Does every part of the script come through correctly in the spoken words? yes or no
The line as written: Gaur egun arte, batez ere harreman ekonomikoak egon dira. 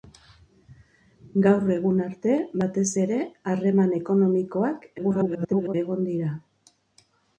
no